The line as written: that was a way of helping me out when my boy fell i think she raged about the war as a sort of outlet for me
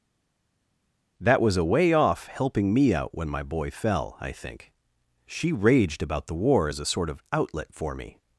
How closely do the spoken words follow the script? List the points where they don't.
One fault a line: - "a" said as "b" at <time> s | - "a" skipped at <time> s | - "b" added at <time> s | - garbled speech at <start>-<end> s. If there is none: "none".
- "of" said as "off" at 1.9 s